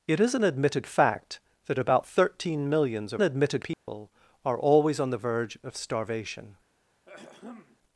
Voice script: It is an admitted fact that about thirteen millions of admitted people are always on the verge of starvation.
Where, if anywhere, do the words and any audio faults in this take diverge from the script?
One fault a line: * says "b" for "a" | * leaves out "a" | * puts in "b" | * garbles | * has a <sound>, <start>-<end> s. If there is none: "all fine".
* has a dropout, 3.7-3.9 s
* has a throat clearing, 7.1-7.8 s